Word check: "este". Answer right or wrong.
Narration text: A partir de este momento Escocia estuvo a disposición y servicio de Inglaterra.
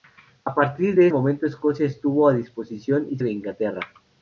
wrong